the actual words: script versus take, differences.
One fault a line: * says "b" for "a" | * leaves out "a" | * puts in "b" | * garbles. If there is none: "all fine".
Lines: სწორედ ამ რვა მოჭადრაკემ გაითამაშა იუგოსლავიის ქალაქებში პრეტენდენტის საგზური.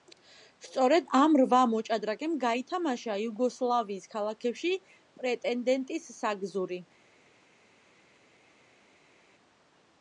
all fine